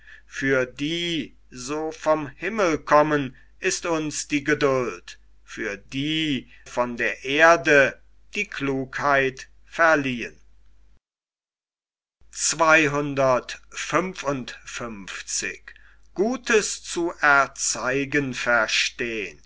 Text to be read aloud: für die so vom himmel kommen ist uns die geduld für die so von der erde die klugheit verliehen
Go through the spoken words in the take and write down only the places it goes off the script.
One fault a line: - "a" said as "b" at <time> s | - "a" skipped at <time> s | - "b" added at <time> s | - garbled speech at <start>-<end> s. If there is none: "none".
- "so" skipped at 6.5 s